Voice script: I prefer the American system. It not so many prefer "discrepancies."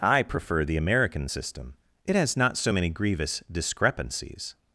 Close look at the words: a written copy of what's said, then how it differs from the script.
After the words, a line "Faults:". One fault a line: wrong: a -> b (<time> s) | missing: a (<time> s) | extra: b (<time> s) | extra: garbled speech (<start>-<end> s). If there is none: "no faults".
I prefer the American system. It has not so many grievous "discrepancies."
Faults:
extra: has (2.1 s)
wrong: prefer -> grievous (2.9 s)